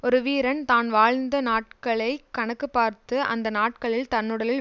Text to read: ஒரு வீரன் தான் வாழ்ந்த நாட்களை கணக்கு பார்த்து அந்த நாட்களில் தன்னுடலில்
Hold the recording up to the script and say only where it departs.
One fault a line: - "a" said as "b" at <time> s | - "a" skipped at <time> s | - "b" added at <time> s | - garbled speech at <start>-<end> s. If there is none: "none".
none